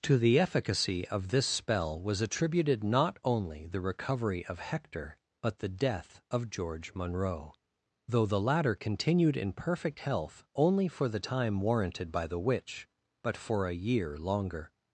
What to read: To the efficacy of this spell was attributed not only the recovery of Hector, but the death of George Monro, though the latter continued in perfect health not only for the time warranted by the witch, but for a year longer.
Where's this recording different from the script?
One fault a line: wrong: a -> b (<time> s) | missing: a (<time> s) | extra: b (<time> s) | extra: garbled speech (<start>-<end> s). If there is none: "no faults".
missing: not (10.4 s)